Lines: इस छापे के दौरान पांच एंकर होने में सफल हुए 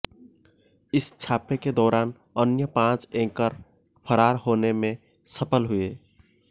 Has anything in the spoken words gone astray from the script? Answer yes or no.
yes